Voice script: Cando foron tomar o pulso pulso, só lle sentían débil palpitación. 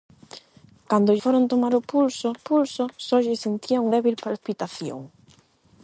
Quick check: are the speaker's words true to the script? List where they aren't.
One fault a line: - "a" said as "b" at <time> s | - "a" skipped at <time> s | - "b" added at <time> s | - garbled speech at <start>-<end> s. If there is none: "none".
none